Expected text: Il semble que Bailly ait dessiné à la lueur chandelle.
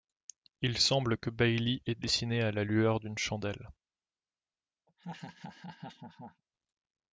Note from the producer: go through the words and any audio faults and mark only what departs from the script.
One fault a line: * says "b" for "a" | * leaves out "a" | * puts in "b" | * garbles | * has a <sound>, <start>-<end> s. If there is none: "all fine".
* puts in "d'une"
* has a laugh, 4.9-6.4 s